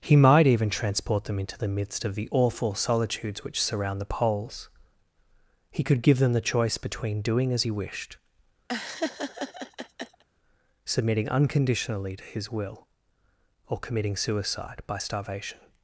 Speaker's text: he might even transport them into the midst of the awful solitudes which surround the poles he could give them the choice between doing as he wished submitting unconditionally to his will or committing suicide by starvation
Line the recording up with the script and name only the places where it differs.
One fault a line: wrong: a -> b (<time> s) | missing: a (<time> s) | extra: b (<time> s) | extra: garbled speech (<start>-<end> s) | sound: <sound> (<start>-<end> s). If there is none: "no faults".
sound: laugh (8.7-10.2 s)